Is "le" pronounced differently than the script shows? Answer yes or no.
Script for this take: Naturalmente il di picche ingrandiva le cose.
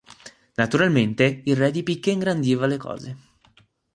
no